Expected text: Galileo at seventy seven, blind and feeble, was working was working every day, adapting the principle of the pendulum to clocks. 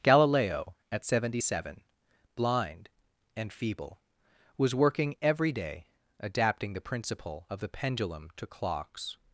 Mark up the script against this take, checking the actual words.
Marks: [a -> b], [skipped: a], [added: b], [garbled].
Galileo at seventy seven, blind and feeble, was working [skipped: was working] every day, adapting the principle of the pendulum to clocks.